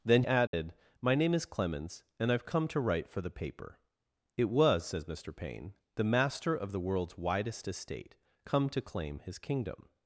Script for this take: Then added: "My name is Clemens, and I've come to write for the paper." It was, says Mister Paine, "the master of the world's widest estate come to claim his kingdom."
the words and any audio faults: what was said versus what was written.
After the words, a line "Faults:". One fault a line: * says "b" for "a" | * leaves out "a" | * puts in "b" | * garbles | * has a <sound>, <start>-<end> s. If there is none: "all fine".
Then added: "My name is Clemens, and I've come to write for the paper." It was, says Mister Paine, "the master of the world's widest estate come to claim his kingdom."
Faults:
* has a dropout, 0.5-0.5 s